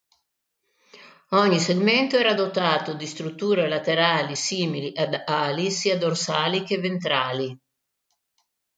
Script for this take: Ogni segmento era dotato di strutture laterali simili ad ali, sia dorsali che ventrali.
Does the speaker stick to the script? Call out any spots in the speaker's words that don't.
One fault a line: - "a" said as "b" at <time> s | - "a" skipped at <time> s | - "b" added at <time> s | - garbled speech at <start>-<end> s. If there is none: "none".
none